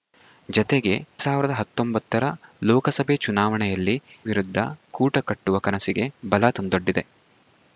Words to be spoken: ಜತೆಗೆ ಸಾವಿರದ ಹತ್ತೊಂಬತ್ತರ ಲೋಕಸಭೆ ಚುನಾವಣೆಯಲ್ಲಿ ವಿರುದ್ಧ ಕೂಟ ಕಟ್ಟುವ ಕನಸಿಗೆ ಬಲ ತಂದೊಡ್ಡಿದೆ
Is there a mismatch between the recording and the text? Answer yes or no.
no